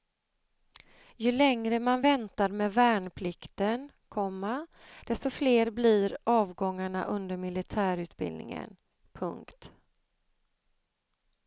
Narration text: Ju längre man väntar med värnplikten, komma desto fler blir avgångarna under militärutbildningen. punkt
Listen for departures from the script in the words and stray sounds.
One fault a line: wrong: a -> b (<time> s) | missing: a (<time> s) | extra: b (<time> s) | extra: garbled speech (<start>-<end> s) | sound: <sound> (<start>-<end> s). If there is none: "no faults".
no faults